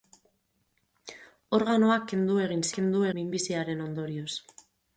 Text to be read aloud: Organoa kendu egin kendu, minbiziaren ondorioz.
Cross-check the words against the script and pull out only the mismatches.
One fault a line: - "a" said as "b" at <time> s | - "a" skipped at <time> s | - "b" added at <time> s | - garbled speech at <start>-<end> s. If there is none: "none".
none